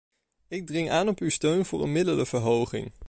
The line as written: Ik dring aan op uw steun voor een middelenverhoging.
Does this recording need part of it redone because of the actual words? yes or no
no